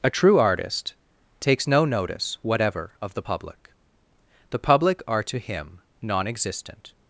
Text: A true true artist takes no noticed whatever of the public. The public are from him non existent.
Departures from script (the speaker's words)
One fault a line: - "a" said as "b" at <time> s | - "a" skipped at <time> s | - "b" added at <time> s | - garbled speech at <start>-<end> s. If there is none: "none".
- "true" skipped at 0.4 s
- "noticed" said as "notice" at 1.9 s
- "from" said as "to" at 5.2 s